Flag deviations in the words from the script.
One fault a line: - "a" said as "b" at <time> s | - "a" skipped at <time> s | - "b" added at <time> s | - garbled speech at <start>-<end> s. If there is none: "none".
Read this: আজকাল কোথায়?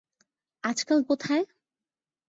none